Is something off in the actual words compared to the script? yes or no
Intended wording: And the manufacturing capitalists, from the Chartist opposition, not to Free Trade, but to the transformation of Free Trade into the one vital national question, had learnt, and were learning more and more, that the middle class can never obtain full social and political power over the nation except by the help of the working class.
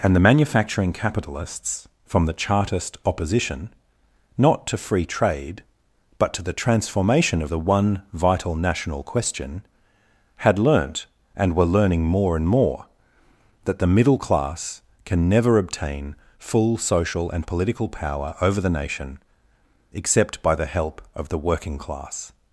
yes